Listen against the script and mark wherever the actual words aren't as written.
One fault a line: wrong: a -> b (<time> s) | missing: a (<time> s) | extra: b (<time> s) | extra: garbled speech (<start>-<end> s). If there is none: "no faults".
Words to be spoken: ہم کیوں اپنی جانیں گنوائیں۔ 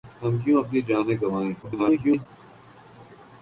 extra: garbled speech (1.6-2.3 s)